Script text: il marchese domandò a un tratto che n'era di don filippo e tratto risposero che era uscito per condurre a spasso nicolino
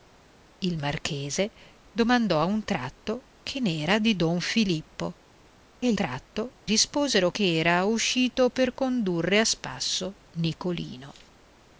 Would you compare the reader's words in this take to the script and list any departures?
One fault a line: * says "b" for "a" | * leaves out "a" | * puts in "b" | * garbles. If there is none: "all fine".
all fine